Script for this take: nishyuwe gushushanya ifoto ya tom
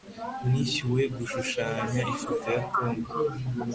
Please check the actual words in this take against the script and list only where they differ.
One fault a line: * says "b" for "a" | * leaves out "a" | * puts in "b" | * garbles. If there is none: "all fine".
all fine